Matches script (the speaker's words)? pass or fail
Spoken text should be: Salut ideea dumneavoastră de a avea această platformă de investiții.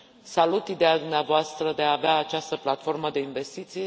pass